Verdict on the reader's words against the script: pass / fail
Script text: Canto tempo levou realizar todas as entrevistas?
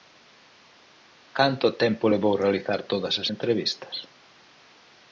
pass